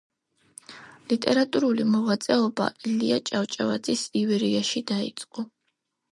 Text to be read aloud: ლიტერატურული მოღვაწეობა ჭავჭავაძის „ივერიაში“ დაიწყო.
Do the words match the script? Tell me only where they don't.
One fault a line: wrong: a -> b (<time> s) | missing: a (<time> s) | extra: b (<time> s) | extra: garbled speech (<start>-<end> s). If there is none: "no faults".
extra: ილია (2.9 s)